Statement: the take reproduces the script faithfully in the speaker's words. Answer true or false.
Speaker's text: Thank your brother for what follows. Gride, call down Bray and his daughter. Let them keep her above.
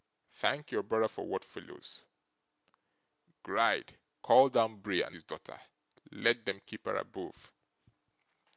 true